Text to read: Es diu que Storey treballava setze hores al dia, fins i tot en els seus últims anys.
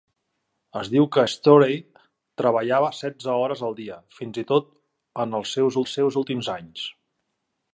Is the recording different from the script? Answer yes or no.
yes